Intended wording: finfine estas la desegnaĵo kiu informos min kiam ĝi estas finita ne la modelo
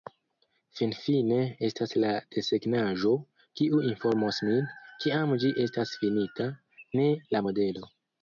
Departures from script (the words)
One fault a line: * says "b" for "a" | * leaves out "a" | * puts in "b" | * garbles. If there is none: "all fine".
all fine